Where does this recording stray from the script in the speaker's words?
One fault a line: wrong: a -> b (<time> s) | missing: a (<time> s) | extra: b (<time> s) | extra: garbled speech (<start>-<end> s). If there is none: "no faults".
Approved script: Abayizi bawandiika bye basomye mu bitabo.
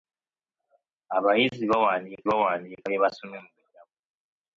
extra: bawandiika (2.3 s)